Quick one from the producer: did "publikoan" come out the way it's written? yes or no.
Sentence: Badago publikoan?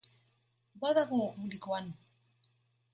yes